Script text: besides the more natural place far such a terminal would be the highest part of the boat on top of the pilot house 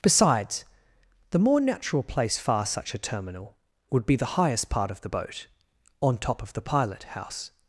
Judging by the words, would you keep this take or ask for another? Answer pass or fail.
pass